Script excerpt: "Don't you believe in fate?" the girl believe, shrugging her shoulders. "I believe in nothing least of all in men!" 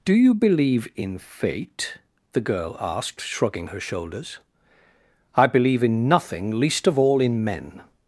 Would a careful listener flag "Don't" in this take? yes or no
yes